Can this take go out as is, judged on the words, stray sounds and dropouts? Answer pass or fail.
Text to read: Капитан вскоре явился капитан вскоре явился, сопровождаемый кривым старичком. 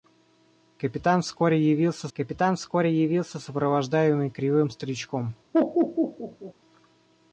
fail